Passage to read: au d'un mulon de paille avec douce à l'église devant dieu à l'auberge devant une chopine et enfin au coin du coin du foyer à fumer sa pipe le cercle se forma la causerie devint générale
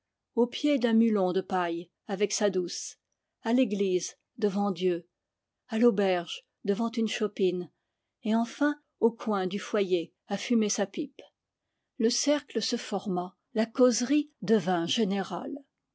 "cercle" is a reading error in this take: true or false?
false